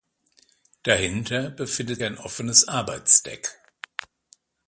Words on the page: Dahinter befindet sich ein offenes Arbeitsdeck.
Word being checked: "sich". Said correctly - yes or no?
no